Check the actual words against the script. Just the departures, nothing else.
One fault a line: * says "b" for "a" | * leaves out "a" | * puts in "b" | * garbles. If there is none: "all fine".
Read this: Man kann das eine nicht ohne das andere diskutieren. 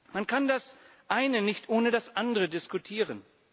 all fine